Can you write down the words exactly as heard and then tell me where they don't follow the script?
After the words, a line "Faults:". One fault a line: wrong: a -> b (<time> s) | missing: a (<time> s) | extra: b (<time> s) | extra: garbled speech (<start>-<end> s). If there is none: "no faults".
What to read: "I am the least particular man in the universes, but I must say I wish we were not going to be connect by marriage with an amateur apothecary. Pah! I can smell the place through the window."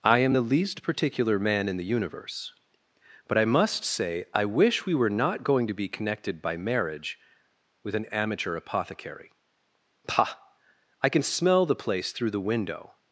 "I am the least particular man in the universe, but I must say I wish we were not going to be connected by marriage with an amateur apothecary. Pah! I can smell the place through the window."
Faults:
wrong: universes -> universe (1.8 s)
wrong: connect -> connected (5.9 s)